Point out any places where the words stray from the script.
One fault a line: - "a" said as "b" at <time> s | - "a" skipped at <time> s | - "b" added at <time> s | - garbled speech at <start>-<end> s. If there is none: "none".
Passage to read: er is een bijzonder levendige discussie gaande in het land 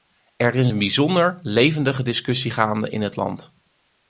none